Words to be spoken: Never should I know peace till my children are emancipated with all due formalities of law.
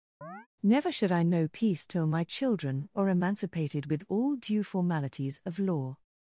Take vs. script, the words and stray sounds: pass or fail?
fail